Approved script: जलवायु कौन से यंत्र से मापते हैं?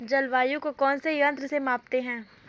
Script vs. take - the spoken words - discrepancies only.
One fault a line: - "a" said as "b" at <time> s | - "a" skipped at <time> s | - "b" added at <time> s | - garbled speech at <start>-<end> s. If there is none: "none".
- "को" added at 0.6 s